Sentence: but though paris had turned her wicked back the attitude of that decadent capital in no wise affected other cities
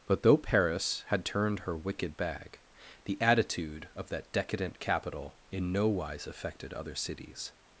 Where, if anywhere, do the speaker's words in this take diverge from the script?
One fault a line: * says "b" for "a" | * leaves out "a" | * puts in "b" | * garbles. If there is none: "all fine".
* says "bag" for "back"